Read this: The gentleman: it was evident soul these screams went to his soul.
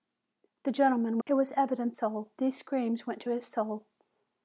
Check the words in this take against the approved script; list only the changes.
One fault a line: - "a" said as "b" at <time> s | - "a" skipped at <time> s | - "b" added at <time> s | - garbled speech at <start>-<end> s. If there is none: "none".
none